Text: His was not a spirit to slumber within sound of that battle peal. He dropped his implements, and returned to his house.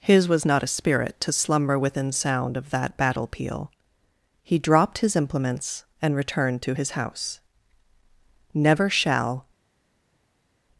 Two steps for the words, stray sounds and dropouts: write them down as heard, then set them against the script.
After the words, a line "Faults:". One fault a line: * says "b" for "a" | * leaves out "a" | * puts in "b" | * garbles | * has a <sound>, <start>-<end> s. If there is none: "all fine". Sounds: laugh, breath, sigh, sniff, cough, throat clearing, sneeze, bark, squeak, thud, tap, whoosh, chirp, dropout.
His was not a spirit to slumber within sound of that battle peal. He dropped his implements, and returned to his house. Never shall
Faults:
* puts in "Never shall"